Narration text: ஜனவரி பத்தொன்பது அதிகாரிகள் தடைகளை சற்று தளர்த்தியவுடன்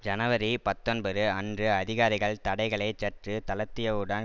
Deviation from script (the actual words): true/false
true